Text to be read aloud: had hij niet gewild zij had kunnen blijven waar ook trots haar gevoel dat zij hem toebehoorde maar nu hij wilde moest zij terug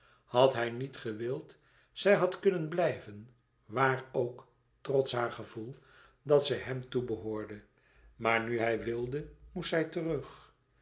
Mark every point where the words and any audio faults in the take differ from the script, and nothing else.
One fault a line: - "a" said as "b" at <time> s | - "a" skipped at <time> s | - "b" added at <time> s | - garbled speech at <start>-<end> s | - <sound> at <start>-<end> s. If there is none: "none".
none